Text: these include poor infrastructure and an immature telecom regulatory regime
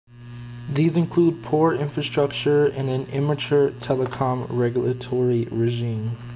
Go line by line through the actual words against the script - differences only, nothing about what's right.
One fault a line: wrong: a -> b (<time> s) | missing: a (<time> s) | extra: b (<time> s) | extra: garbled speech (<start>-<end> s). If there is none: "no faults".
no faults